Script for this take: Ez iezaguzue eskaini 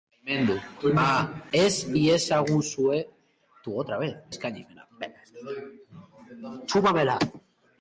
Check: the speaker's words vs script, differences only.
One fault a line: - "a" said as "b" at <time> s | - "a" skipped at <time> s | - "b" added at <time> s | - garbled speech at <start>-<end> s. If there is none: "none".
none